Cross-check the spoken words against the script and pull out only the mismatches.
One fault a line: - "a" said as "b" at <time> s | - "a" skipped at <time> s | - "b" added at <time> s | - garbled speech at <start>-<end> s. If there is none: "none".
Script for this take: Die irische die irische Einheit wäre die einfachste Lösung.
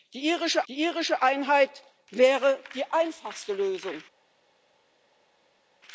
none